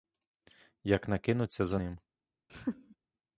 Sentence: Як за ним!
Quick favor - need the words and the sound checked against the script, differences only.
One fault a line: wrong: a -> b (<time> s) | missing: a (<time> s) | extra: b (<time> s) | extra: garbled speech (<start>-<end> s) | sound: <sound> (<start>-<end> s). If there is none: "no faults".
extra: не кинуться (1.1 s)
sound: laugh (2.5-3.0 s)